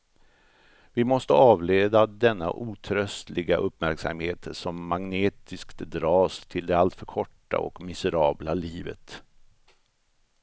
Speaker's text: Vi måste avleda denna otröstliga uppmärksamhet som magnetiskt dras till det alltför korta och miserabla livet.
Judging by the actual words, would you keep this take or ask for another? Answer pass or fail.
pass